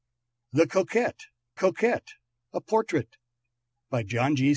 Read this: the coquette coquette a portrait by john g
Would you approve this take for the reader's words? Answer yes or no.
yes